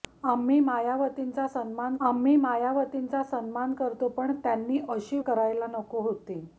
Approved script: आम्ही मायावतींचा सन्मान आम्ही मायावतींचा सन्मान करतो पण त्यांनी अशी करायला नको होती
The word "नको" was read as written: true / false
true